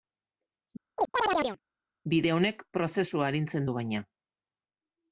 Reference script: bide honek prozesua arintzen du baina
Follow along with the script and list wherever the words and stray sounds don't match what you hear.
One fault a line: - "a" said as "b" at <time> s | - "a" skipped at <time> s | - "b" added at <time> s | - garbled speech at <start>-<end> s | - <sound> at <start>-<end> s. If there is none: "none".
- chirp at 1.0-1.6 s